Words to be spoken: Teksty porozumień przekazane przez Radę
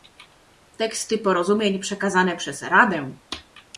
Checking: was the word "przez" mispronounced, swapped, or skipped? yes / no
no